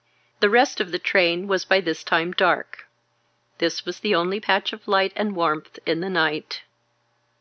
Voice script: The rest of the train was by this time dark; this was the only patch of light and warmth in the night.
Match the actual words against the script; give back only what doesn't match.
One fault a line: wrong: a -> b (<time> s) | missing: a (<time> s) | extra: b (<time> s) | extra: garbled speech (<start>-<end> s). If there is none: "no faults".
no faults